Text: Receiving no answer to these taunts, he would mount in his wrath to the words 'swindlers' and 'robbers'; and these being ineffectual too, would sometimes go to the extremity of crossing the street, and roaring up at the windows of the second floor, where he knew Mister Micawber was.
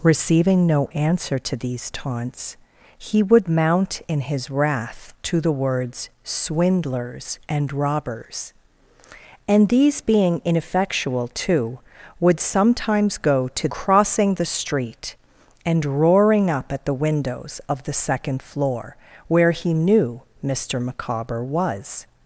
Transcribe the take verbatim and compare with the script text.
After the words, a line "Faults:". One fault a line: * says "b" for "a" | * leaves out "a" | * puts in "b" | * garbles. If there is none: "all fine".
Receiving no answer to these taunts, he would mount in his wrath to the words 'swindlers' and 'robbers'; and these being ineffectual too, would sometimes go to crossing the street, and roaring up at the windows of the second floor, where he knew Mister Micawber was.
Faults:
* leaves out "the extremity of"